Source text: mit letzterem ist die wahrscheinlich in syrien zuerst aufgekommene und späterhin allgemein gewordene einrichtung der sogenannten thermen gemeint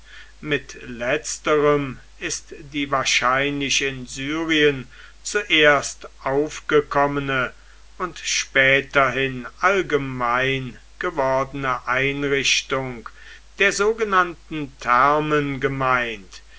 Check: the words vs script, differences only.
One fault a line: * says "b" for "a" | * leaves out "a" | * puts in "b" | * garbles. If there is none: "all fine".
all fine